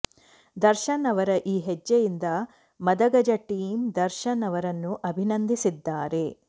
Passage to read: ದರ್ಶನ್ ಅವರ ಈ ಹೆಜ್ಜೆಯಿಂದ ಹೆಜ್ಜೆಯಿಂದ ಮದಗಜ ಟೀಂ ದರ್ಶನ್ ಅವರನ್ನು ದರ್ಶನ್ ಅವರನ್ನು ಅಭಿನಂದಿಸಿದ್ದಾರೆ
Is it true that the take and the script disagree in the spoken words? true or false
true